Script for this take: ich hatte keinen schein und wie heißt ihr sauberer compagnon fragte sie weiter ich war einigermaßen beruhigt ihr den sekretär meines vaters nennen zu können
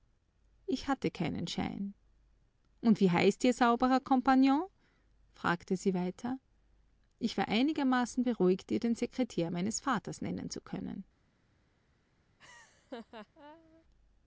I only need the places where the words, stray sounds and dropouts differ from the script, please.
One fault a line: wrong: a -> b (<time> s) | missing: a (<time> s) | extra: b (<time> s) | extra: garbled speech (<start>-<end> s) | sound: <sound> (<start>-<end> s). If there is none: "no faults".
sound: laugh (12.4-13.8 s)